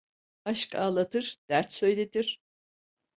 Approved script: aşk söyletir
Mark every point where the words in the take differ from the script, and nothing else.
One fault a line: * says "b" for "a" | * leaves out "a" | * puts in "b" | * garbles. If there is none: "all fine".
* puts in "ağlatır dert"